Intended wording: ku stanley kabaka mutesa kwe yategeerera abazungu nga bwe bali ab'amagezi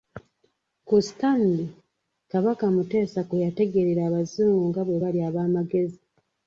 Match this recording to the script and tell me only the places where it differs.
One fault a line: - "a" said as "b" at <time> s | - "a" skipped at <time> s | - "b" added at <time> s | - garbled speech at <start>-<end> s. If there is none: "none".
none